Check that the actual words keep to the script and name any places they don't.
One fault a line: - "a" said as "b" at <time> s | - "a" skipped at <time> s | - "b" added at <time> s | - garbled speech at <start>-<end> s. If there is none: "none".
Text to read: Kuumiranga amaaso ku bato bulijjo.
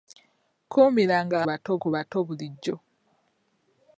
- "amaaso" said as "bato" at 1.5 s